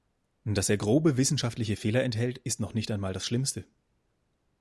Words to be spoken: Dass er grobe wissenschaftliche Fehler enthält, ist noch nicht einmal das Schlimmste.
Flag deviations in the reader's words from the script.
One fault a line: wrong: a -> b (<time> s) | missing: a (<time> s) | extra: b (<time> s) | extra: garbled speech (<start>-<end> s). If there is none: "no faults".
no faults